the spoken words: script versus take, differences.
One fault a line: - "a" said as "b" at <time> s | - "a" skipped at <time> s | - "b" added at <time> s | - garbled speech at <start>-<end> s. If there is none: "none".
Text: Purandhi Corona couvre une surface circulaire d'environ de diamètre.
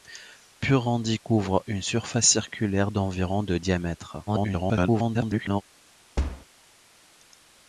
- "Corona" skipped at 1.2 s
- garbled speech at 4.3-5.6 s